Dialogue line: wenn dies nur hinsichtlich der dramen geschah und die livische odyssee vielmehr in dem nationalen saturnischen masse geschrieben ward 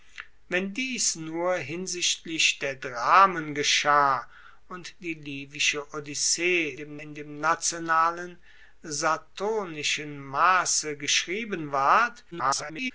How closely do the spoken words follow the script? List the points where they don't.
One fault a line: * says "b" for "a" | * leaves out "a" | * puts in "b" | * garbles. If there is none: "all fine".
* says "dem" for "vielmehr"
* garbles